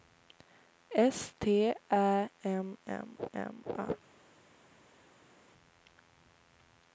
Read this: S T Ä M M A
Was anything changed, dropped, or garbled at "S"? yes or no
no